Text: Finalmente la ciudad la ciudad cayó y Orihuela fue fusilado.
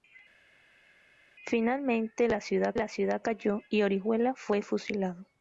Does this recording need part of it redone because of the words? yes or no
no